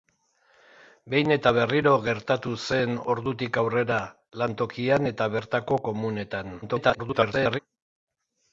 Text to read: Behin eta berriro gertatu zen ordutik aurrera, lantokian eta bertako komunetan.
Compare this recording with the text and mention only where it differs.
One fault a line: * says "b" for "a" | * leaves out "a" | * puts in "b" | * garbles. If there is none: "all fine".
* garbles